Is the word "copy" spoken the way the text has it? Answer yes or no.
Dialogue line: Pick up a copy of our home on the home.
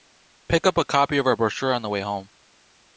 yes